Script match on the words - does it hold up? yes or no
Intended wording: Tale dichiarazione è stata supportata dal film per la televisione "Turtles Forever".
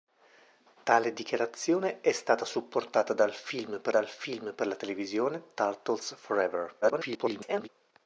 no